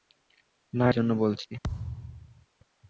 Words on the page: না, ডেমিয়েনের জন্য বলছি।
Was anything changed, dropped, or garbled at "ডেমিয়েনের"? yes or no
yes